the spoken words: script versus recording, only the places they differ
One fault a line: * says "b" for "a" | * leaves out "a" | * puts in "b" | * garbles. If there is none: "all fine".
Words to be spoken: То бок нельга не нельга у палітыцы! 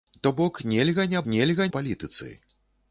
all fine